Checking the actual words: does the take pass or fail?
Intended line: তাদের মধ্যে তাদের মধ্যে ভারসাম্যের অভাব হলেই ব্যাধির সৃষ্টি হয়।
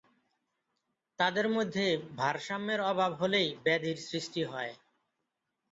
fail